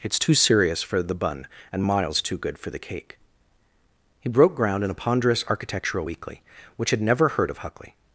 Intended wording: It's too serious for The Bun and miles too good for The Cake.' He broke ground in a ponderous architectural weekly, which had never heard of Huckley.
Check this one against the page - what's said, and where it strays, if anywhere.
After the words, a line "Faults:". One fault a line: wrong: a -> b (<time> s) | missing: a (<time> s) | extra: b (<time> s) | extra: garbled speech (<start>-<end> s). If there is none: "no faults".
It's too serious for The Bun and miles too good for The Cake.' He broke ground in a ponderous architectural weekly, which had never heard of Huckley.
Faults:
no faults